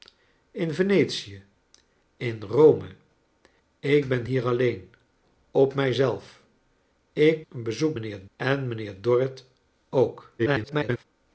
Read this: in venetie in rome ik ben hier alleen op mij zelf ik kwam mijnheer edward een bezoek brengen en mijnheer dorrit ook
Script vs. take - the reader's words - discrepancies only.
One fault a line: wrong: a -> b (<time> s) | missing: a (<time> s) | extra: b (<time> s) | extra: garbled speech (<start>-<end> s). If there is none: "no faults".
missing: kwam mijnheer edward (7.4 s)
wrong: brengen -> mijnheer (7.9 s)
extra: garbled speech (10.4-11.0 s)